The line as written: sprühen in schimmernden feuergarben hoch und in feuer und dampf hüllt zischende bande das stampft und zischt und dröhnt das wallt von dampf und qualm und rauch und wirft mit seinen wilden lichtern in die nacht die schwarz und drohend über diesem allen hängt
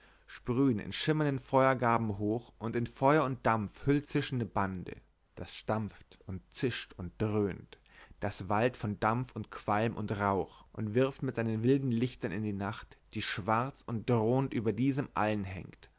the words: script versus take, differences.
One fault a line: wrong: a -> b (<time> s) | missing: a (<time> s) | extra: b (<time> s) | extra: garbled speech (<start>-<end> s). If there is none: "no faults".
no faults